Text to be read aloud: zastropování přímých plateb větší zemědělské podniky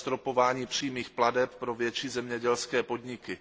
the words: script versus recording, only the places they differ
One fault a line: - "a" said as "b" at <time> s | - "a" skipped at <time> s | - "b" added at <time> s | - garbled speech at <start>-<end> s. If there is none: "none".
- "pro" added at 1.5 s